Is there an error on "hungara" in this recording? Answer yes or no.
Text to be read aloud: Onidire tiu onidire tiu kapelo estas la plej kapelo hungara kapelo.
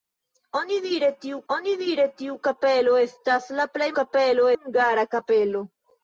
no